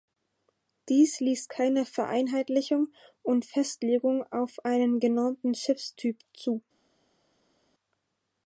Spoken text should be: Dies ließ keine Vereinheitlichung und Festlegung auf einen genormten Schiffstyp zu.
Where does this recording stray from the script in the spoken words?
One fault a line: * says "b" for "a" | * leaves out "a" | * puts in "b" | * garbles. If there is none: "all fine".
all fine